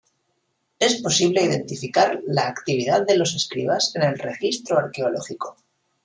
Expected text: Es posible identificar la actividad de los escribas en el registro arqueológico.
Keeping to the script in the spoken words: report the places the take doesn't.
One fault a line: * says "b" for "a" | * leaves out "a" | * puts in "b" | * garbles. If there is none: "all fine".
all fine